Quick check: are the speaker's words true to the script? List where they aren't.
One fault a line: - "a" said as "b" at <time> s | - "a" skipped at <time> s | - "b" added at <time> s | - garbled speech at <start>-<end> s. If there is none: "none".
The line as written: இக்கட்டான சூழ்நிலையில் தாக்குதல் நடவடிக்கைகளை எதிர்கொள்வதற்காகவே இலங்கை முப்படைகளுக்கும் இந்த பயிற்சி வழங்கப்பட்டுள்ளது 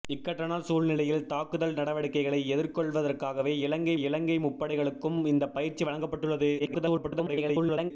- "இலங்கை" added at 4.0 s
- garbled speech at 6.6-7.9 s